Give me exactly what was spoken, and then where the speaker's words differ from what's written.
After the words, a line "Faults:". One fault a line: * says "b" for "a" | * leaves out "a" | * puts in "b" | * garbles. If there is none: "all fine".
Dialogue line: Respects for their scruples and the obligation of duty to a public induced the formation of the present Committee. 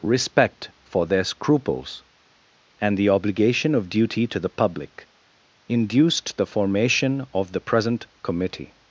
Respect for their scruples and the obligation of duty to the public induced the formation of the present Committee.
Faults:
* says "Respect" for "Respects"
* says "the" for "a"